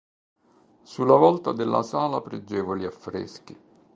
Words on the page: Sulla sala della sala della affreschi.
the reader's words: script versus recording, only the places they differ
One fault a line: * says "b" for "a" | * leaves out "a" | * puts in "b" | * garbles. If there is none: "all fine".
* says "volta" for "sala"
* says "pregevoli" for "della"